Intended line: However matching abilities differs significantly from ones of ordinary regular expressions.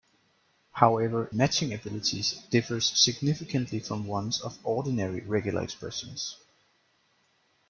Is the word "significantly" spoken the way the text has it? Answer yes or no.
yes